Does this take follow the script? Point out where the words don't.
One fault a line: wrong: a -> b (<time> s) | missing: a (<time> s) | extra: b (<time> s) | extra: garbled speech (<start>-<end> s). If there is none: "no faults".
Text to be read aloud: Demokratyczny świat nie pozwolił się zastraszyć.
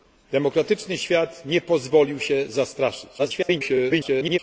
extra: garbled speech (3.2-4.4 s)